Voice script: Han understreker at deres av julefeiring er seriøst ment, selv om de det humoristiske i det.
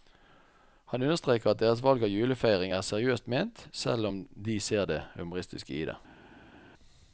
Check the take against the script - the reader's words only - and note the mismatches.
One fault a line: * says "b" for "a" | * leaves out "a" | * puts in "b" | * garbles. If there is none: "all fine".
* puts in "valg"
* puts in "ser"